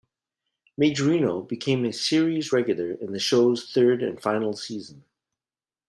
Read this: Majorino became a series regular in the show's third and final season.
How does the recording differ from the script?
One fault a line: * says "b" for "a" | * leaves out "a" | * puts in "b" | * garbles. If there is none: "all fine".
all fine